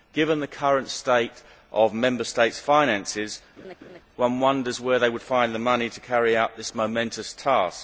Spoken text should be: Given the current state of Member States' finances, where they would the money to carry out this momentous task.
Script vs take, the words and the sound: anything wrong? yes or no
yes